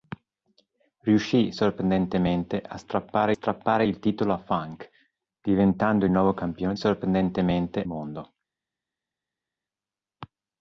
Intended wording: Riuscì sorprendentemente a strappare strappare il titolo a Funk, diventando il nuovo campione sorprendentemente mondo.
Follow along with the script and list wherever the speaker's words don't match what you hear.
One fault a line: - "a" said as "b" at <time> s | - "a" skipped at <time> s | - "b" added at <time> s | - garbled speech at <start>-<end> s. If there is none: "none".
none